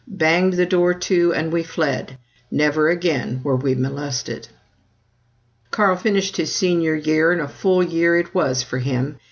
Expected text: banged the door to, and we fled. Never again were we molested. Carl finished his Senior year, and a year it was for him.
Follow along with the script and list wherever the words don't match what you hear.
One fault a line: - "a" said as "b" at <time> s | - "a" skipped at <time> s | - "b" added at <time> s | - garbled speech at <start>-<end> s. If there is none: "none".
- "full" added at 7.5 s